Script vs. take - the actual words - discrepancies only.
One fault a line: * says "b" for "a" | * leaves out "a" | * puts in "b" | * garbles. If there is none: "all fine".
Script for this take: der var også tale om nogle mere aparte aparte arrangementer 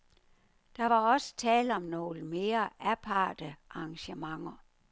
* leaves out "aparte"